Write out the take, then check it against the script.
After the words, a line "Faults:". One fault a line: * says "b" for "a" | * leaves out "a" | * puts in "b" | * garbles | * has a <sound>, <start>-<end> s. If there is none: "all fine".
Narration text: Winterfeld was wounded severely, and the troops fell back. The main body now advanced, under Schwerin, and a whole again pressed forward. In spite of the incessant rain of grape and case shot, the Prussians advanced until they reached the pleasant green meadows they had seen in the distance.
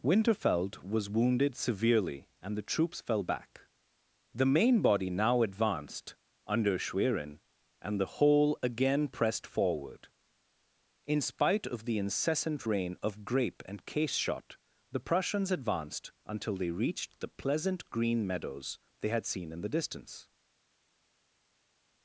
Winterfeld was wounded severely, and the troops fell back. The main body now advanced, under Schwerin, and the whole again pressed forward. In spite of the incessant rain of grape and case shot, the Prussians advanced until they reached the pleasant green meadows they had seen in the distance.
Faults:
* says "the" for "a"